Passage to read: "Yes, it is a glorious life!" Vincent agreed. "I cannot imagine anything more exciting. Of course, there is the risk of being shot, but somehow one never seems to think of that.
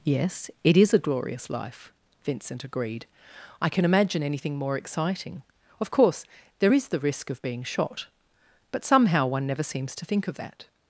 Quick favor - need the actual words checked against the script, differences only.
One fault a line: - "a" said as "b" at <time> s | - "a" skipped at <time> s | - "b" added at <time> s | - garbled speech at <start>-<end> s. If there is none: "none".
- "cannot" said as "can" at 3.7 s